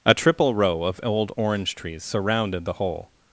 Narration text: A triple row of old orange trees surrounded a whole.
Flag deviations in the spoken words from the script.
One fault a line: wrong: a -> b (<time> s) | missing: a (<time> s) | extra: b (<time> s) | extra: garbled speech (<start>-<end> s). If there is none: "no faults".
wrong: a -> the (2.6 s)